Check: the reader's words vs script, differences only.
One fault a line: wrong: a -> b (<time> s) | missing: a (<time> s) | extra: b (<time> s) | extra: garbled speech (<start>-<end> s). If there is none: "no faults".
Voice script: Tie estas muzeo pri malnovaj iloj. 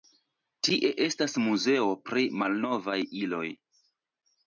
no faults